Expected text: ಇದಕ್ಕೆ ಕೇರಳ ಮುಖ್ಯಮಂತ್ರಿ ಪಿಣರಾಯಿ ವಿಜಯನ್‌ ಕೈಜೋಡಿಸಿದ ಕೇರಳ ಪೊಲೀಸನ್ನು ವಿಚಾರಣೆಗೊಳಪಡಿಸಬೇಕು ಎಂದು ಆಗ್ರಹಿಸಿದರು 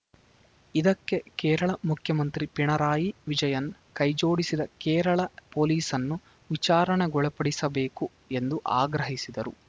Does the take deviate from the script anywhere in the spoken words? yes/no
no